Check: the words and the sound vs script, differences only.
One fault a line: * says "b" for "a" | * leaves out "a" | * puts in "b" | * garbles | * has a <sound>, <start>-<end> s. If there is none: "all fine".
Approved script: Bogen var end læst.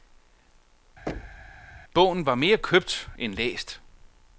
* has a thud, 1.1-1.7 s
* puts in "mere købt"